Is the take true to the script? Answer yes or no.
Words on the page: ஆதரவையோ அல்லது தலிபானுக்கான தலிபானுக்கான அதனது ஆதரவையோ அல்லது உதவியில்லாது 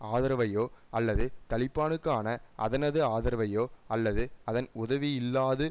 no